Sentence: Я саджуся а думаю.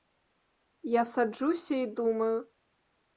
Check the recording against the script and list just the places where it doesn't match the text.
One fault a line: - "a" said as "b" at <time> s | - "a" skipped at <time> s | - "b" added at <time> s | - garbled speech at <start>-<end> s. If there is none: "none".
- "а" said as "і" at 1.8 s